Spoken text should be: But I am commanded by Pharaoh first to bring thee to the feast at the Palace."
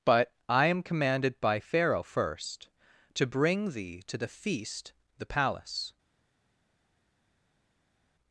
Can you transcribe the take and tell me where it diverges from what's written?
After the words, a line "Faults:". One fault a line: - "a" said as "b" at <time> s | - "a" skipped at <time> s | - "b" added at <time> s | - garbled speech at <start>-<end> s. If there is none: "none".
But I am commanded by Pharaoh first to bring thee to the feast the Palace."
Faults:
- "at" skipped at 4.9 s